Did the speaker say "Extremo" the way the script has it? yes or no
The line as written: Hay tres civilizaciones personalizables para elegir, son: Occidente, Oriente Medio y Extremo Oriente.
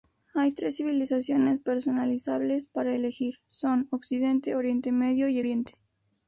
no